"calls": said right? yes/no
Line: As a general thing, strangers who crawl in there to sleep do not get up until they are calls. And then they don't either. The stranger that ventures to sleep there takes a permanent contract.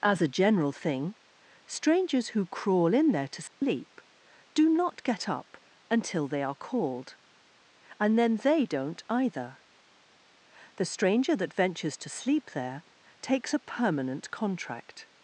no